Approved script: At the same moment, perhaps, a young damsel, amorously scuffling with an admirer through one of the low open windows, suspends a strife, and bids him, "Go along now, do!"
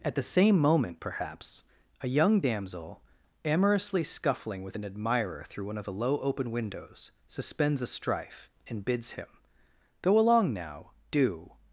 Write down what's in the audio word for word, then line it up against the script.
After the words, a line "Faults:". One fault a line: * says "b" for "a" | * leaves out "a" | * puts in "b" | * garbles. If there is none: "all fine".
At the same moment, perhaps, a young damsel, amorously scuffling with an admirer through one of the low open windows, suspends a strife, and bids him, "Go along now, do!"
Faults:
all fine